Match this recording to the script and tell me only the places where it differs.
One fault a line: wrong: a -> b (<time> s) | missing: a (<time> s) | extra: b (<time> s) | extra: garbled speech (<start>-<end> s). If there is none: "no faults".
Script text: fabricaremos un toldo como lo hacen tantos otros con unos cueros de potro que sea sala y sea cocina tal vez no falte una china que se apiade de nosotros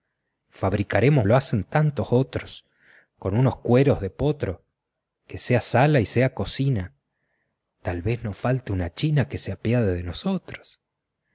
missing: un toldo como (1.3 s)